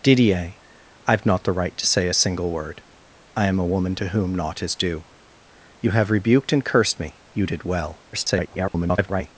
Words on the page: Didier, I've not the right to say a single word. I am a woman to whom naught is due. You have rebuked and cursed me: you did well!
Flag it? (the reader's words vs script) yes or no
yes